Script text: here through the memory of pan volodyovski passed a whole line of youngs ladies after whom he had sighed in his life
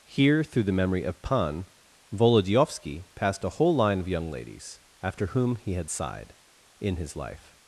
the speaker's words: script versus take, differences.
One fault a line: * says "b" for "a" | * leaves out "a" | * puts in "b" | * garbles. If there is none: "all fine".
* says "young" for "youngs"